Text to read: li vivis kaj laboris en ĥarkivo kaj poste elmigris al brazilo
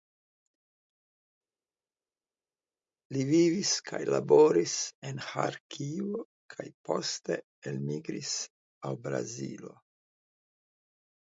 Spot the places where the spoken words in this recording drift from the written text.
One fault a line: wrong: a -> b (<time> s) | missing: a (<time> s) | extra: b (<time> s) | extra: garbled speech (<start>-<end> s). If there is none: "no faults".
no faults